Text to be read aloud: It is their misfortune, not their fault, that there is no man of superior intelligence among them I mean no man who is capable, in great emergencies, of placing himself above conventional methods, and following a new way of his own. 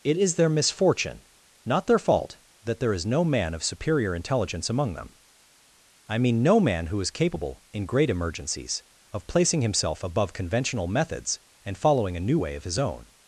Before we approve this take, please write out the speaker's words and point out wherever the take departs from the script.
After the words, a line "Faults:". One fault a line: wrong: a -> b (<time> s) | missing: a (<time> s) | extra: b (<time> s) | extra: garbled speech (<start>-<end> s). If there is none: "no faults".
It is their misfortune, not their fault, that there is no man of superior intelligence among them I mean no man who is capable, in great emergencies, of placing himself above conventional methods, and following a new way of his own.
Faults:
no faults